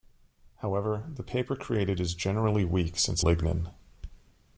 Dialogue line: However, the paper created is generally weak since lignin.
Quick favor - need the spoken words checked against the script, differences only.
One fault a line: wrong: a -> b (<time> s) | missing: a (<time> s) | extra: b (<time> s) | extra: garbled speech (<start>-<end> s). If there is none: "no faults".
no faults